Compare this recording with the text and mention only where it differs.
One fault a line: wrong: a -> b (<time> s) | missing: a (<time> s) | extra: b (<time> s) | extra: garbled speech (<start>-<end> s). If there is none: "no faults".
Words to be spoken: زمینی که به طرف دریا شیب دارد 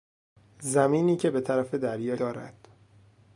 missing: شیب (2.2 s)